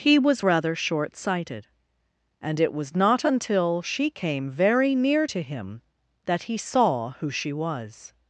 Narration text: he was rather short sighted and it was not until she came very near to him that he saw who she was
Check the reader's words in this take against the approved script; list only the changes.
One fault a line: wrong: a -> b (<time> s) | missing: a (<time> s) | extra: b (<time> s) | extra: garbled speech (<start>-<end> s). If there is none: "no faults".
no faults